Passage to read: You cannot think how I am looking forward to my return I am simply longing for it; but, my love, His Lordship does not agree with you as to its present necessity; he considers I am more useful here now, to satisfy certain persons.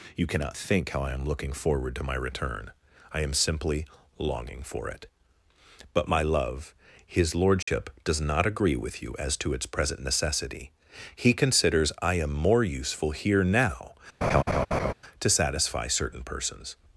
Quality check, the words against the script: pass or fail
pass